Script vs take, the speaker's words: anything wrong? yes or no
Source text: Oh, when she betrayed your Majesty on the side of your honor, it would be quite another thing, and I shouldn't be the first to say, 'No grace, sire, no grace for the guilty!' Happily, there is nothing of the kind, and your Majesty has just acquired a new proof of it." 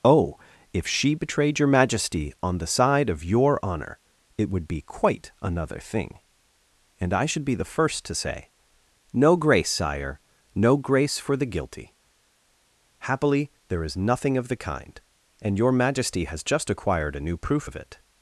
yes